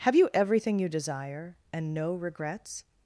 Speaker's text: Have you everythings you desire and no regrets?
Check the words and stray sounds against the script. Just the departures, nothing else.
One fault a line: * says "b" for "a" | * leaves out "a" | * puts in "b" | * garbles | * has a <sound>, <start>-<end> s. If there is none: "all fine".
* says "everything" for "everythings"